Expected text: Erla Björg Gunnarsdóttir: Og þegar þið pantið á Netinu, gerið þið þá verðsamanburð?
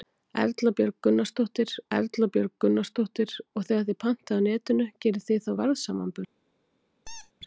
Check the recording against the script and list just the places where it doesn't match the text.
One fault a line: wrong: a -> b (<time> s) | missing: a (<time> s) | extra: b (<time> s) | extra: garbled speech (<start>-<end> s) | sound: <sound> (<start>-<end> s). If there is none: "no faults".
extra: erla Björg Gunnarsdóttir (2.0 s)
sound: squeak (7.1-7.3 s)